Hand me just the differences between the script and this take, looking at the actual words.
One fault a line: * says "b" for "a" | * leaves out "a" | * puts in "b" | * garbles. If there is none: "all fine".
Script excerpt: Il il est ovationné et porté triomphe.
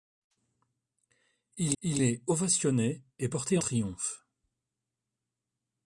all fine